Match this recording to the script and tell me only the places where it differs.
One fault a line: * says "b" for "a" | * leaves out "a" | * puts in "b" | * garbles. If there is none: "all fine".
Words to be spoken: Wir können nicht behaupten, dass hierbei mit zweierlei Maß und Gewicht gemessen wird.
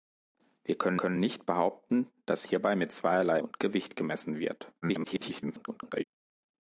* puts in "können"
* leaves out "Maß"
* garbles